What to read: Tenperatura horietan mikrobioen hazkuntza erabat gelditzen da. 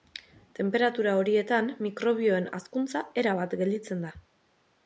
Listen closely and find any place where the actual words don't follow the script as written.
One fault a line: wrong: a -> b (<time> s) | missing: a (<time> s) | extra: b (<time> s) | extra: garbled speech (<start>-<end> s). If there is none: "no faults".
no faults